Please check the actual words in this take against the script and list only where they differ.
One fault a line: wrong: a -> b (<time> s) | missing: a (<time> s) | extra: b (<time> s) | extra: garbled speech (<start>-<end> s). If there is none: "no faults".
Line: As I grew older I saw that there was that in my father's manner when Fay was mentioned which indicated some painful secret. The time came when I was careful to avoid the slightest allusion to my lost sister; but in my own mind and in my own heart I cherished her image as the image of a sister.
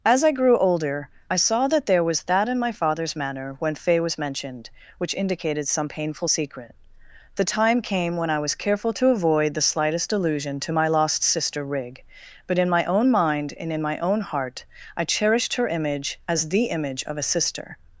extra: rig (11.6 s)